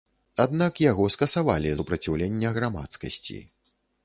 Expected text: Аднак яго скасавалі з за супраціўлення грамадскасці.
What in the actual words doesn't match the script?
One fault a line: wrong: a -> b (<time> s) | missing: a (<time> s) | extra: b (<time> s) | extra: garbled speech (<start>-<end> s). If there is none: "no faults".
missing: з за (1.8 s)